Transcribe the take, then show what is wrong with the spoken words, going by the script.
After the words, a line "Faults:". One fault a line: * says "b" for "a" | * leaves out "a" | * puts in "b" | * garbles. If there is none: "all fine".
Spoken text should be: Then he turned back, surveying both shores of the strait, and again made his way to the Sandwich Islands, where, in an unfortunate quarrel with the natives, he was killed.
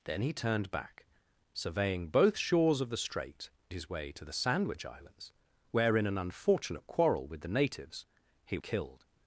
Then he turned back, surveying both shores of the strait, his way to the Sandwich Islands, where, in an unfortunate quarrel with the natives, he killed.
Faults:
* leaves out "and again made"
* leaves out "was"